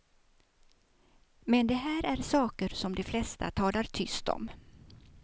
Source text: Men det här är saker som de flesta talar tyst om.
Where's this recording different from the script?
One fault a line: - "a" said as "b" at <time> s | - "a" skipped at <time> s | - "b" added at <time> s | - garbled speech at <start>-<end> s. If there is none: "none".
none